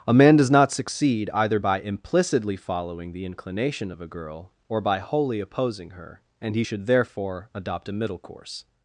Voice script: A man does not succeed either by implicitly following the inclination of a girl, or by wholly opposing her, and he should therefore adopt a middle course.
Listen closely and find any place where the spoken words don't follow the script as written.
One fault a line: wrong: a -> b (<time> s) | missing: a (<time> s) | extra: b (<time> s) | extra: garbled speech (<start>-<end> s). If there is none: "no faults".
no faults